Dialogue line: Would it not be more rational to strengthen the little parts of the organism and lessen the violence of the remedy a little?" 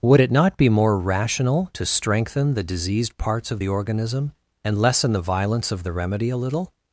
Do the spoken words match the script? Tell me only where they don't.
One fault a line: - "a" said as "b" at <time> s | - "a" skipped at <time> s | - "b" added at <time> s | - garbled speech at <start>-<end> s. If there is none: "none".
- "little" said as "diseased" at 2.6 s